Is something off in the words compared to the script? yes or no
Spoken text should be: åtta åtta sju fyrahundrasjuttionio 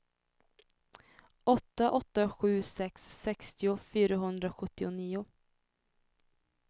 yes